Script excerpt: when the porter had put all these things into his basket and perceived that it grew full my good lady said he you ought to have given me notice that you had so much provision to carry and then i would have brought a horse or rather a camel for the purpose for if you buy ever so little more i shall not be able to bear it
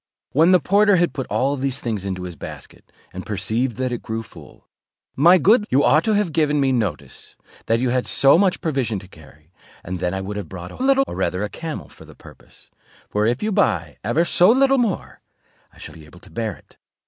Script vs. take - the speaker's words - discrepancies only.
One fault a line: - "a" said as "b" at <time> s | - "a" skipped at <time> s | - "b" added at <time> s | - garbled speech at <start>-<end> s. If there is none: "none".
- "lady said he" skipped at 5.7 s
- "horse" said as "little" at 10.8 s
- "not" skipped at 16.0 s